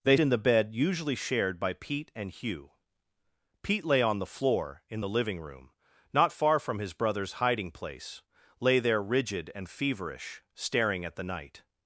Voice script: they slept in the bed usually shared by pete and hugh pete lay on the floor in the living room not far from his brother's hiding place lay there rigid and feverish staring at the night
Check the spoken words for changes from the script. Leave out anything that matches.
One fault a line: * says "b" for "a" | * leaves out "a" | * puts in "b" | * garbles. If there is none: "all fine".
* leaves out "slept"